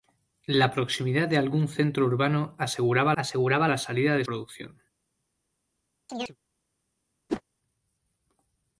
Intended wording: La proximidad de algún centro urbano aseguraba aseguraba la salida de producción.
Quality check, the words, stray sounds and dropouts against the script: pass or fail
fail